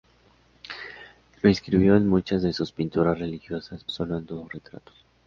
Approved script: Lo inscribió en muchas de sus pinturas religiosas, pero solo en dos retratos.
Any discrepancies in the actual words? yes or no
yes